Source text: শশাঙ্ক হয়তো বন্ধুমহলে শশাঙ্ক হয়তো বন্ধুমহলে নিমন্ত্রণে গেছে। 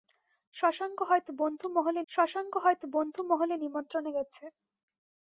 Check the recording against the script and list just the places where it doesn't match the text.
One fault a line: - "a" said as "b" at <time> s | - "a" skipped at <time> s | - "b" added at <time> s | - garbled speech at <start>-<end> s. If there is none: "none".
none